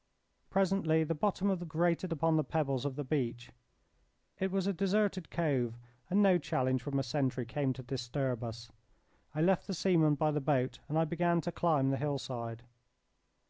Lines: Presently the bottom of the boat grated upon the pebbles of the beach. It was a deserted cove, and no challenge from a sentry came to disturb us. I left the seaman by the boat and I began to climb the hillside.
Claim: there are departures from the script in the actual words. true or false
true